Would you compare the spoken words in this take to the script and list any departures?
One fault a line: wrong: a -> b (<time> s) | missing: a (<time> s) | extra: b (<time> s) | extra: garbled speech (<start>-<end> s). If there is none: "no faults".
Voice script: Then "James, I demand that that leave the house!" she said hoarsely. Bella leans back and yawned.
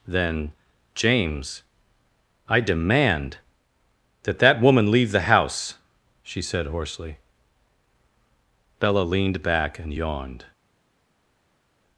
extra: woman (4.6 s)
wrong: leans -> leaned (9.0 s)